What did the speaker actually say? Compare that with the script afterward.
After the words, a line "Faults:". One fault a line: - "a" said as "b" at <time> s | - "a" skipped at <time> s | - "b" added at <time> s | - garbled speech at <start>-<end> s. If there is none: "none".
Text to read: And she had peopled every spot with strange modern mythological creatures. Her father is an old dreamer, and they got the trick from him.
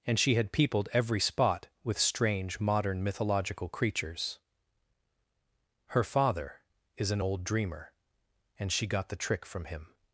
And she had peopled every spot with strange modern mythological creatures. Her father is an old dreamer, and she got the trick from him.
Faults:
- "they" said as "she" at 8.7 s